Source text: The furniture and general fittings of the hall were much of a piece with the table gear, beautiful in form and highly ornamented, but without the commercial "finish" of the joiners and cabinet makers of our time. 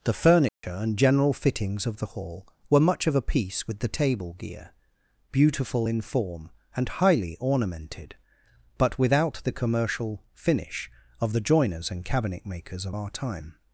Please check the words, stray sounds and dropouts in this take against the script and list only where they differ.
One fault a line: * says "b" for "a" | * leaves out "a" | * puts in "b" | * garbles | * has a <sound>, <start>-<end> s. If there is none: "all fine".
* has a dropout, 0.5-0.6 s